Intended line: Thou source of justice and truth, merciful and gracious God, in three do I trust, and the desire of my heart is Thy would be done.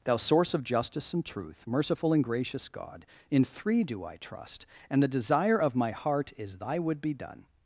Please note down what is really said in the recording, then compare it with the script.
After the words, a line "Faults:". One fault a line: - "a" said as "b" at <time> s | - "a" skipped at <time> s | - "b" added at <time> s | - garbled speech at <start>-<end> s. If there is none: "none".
Thou source of justice and truth, merciful and gracious God, in three do I trust, and the desire of my heart is Thy would be done.
Faults:
none